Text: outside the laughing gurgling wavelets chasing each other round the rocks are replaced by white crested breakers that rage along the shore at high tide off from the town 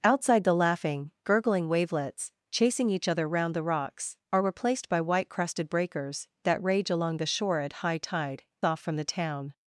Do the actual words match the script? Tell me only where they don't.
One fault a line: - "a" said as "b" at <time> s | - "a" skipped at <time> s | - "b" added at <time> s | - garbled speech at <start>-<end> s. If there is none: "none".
none